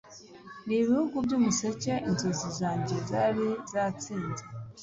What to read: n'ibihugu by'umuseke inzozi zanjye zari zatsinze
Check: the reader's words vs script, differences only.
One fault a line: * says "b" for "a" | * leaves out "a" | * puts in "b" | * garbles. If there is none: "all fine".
all fine